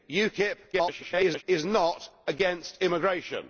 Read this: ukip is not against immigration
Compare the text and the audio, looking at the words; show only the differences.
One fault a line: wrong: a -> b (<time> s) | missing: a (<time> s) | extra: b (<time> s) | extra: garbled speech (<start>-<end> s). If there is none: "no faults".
extra: garbled speech (0.7-1.4 s)